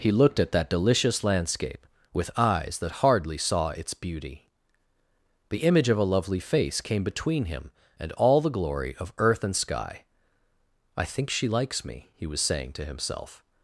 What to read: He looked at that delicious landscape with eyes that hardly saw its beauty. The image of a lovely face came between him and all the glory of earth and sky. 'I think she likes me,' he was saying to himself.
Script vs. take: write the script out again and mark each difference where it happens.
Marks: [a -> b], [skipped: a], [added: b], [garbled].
He looked at that delicious landscape with eyes that hardly saw its beauty. The image of a lovely face came between him and all the glory of earth and sky. 'I think she likes me,' he was saying to himself.